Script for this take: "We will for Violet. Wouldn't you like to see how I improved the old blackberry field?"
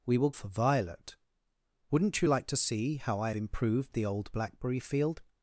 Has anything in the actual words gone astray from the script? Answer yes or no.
no